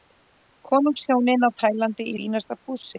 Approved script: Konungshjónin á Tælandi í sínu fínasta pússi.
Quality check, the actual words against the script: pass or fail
fail